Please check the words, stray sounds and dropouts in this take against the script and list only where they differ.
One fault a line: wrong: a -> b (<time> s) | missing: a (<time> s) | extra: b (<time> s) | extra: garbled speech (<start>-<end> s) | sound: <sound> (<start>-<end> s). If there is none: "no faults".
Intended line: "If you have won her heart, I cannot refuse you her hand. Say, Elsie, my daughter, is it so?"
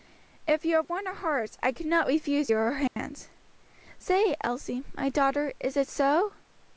sound: dropout (2.9-3.0 s)